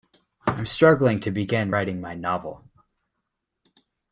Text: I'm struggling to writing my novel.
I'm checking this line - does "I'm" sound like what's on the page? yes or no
yes